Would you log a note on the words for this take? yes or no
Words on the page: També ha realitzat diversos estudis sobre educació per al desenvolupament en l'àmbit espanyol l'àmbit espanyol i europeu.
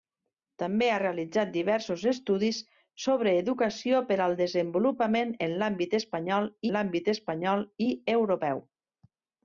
no